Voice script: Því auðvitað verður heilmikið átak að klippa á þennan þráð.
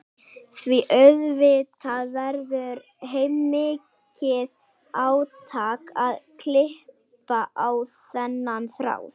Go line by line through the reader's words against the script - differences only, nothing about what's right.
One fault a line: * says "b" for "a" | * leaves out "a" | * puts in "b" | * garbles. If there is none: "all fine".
all fine